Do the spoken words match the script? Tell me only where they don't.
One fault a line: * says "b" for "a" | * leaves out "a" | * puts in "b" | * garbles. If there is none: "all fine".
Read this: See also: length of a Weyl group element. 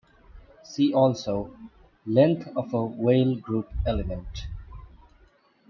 all fine